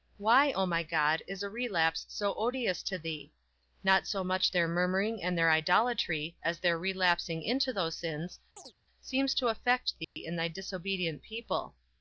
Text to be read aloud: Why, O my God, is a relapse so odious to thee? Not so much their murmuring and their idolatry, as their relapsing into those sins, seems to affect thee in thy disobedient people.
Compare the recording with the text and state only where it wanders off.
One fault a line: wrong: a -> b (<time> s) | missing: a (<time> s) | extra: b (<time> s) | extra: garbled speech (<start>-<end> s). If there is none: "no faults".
no faults